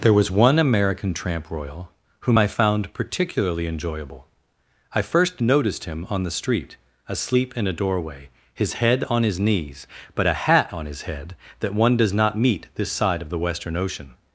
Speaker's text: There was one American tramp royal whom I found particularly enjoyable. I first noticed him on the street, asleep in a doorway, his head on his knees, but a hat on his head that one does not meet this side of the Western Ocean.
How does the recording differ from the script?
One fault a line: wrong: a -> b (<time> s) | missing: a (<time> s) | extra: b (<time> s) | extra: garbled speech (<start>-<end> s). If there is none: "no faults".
no faults